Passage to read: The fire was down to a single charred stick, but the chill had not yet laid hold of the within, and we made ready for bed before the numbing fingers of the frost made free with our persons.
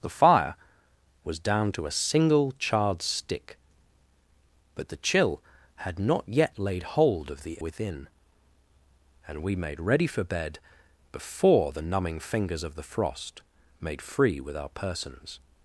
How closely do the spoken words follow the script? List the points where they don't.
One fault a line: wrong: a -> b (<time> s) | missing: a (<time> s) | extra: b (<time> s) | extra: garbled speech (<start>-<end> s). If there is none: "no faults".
no faults